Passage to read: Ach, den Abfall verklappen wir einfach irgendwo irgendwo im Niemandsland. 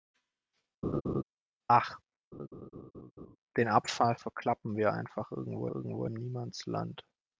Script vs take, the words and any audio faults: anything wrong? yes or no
yes